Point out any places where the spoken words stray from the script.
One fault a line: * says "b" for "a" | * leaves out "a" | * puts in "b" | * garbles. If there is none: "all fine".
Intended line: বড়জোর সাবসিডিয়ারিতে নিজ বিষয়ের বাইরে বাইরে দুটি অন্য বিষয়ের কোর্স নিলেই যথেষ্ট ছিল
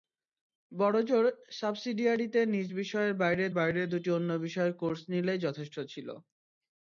all fine